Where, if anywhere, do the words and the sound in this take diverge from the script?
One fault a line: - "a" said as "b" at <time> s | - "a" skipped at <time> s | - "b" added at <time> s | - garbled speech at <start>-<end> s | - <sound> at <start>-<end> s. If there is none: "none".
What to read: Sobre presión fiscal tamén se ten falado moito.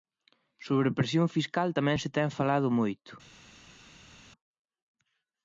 none